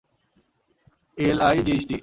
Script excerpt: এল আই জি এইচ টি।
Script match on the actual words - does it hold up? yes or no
yes